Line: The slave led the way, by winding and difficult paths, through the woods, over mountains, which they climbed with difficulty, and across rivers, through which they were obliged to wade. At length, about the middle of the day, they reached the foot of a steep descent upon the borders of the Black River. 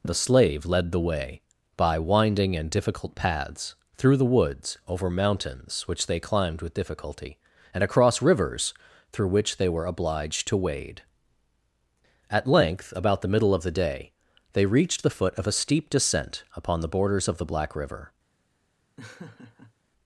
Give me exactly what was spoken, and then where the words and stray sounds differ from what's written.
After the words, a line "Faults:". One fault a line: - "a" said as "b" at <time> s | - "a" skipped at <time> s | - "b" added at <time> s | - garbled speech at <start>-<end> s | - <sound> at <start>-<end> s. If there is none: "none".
The slave led the way, by winding and difficult paths, through the woods, over mountains, which they climbed with difficulty, and across rivers, through which they were obliged to wade. At length, about the middle of the day, they reached the foot of a steep descent upon the borders of the Black River.
Faults:
- laugh at 19.0-19.7 s